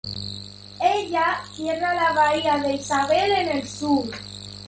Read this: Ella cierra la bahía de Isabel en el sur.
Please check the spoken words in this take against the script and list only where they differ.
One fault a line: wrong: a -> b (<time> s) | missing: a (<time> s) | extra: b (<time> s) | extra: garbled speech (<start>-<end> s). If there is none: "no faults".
no faults